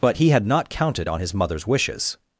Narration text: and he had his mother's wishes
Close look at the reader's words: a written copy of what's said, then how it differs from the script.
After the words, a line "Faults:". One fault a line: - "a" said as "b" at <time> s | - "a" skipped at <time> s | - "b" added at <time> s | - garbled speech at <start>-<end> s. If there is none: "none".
but he had not counted on his mother's wishes
Faults:
- "and" said as "but" at 0.0 s
- "not counted on" added at 0.5 s